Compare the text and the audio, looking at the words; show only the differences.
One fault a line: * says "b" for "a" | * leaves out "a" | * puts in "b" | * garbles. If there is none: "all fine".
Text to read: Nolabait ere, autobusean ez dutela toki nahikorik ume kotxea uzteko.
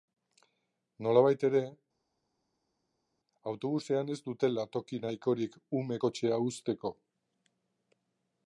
all fine